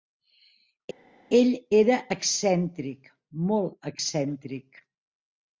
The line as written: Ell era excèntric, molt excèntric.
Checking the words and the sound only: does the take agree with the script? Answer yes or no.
yes